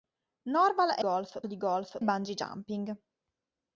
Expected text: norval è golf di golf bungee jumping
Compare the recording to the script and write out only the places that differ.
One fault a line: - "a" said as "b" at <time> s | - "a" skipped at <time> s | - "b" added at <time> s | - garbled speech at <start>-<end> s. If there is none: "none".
none